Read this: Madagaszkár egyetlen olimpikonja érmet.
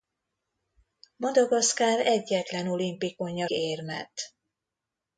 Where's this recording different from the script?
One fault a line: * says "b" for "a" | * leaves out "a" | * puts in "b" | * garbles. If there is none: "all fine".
all fine